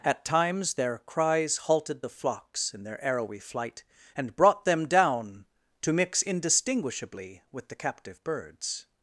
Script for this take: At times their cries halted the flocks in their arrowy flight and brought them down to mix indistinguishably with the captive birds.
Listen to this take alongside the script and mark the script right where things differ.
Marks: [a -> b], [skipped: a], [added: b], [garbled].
At times their cries halted the flocks in their arrowy flight and brought them down to mix indistinguishably with the captive birds.